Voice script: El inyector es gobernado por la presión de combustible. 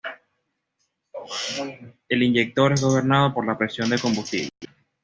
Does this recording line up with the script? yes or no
yes